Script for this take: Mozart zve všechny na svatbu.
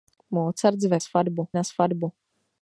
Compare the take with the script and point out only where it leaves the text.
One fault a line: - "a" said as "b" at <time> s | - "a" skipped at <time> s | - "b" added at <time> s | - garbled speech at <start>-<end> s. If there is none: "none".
- "všechny" said as "svatbu" at 1.0 s